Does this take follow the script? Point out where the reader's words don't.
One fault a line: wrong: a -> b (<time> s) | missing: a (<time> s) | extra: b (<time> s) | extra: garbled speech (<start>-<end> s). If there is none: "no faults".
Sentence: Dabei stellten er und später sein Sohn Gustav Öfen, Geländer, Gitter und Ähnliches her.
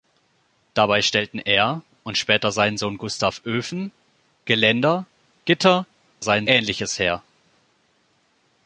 wrong: und -> sein (6.2 s)